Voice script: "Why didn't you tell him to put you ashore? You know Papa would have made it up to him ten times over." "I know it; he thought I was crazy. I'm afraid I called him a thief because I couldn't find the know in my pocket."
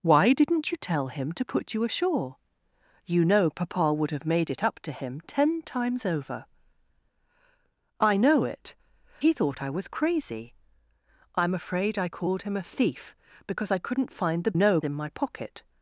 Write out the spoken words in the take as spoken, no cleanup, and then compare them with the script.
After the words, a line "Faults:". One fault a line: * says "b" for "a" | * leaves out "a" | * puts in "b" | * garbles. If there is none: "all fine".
"Why didn't you tell him to put you ashore? You know Papa would have made it up to him ten times over." "I know it; he thought I was crazy. I'm afraid I called him a thief because I couldn't find the know in my pocket."
Faults:
all fine